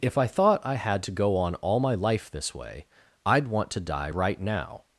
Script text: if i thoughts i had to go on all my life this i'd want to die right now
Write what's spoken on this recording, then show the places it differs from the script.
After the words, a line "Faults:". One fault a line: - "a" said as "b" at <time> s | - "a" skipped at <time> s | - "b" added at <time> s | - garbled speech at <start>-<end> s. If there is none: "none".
if i thought i had to go on all my life this way i'd want to die right now
Faults:
- "thoughts" said as "thought" at 0.2 s
- "way" added at 2.5 s